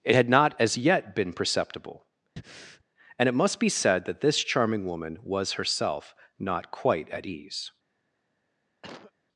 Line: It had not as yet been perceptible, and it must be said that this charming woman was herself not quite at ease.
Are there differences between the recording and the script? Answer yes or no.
no